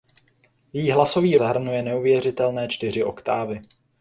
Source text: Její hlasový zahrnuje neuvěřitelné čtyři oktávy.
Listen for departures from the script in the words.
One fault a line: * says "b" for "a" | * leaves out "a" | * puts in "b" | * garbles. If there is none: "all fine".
all fine